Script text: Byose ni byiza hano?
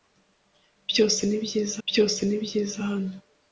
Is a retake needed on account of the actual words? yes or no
yes